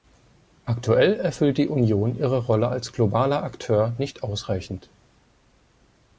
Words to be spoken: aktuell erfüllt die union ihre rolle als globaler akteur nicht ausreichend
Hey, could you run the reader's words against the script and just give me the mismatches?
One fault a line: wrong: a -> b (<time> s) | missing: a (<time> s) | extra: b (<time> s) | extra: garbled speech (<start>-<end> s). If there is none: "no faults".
no faults